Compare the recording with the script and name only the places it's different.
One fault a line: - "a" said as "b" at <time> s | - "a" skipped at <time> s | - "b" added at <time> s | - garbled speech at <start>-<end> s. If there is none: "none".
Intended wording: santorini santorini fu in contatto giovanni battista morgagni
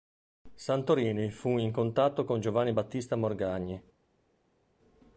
- "santorini" skipped at 1.3 s
- "con" added at 2.2 s